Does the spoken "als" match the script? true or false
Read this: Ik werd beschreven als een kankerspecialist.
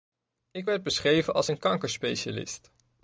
true